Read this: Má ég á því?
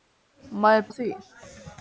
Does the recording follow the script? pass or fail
pass